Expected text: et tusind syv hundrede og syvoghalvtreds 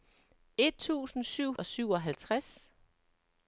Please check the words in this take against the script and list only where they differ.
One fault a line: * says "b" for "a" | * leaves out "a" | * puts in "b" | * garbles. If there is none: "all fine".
* leaves out "hundrede"